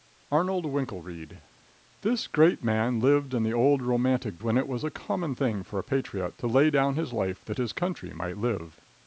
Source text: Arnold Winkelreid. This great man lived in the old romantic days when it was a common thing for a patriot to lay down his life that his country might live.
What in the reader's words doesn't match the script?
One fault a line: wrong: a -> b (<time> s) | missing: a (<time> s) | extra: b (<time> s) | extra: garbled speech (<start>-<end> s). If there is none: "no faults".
missing: days (4.4 s)